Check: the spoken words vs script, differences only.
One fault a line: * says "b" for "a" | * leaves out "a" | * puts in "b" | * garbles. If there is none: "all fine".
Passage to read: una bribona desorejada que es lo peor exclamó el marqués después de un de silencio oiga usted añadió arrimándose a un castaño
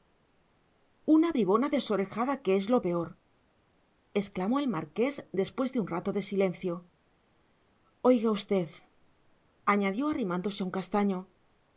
* puts in "rato"